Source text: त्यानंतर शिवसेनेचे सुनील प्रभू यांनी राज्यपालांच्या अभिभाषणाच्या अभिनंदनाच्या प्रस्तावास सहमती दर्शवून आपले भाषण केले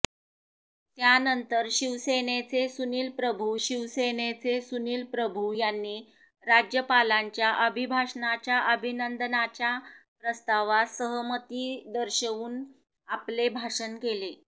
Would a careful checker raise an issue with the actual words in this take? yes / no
yes